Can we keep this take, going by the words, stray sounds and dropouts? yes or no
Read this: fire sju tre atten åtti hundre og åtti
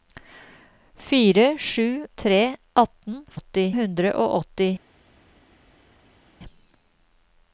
yes